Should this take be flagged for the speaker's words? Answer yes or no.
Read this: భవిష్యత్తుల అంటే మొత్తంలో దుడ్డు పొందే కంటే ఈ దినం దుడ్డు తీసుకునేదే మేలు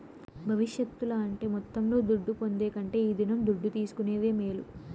no